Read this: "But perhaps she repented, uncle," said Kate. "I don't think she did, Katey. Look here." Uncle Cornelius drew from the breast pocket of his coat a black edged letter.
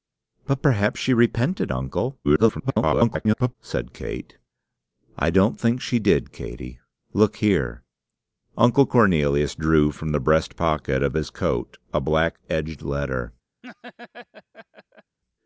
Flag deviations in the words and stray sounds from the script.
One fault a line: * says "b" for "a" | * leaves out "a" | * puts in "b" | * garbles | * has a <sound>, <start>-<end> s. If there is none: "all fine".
* garbles
* has a laugh, 13.6-15.2 s